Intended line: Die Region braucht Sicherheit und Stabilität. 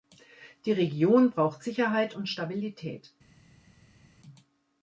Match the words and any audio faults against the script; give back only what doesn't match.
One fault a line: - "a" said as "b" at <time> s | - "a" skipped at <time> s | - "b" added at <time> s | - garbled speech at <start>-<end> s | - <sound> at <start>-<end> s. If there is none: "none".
none